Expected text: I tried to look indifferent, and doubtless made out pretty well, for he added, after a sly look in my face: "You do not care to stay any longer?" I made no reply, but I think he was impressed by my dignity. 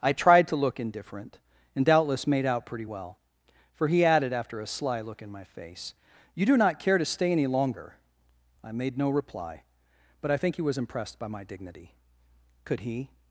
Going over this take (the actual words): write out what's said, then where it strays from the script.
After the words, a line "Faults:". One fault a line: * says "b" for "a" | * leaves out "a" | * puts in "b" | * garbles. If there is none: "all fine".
I tried to look indifferent, and doubtless made out pretty well, for he added, after a sly look in my face: "You do not care to stay any longer?" I made no reply, but I think he was impressed by my dignity. Could he
Faults:
* puts in "Could he"